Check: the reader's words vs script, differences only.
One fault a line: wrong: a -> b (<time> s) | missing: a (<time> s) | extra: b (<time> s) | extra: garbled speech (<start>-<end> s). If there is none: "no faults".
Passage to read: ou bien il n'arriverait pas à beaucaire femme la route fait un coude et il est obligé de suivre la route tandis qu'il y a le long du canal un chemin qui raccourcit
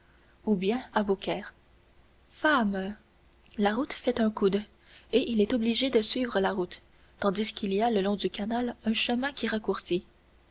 missing: il n'arriverait pas (0.8 s)